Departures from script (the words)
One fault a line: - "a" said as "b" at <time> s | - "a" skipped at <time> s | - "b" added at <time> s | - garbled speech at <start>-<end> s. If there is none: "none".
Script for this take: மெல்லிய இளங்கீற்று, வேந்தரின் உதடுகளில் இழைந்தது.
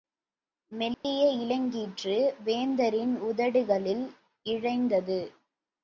none